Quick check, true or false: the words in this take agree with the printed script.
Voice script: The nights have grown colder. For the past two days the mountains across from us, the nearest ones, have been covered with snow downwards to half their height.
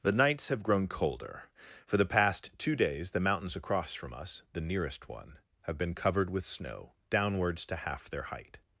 false